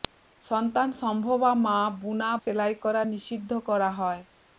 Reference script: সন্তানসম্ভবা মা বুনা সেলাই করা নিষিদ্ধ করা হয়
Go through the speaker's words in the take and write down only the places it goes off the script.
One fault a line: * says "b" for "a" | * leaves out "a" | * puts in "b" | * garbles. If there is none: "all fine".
all fine